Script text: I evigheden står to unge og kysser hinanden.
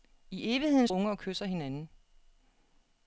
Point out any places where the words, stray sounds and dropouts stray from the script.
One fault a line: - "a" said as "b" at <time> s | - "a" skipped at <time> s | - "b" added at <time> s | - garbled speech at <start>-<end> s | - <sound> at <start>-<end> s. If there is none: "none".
- "står to" skipped at 0.9 s